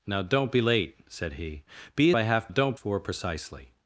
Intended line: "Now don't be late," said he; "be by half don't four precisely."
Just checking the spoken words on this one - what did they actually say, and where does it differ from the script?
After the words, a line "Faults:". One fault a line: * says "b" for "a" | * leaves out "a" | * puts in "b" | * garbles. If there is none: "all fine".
"Now don't be late," said he; "be by half don't four precisely."
Faults:
all fine